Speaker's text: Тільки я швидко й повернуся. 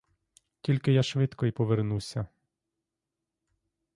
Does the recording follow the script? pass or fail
pass